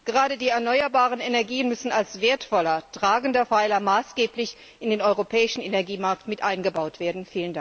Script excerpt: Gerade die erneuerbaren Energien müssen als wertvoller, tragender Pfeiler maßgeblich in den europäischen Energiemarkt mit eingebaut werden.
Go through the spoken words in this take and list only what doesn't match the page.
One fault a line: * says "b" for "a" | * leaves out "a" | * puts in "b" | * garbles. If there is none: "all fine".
all fine